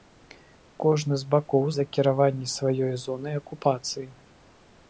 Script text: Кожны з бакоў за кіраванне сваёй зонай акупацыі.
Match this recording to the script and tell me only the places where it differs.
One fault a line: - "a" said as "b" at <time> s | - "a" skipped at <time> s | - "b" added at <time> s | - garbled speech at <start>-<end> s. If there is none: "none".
none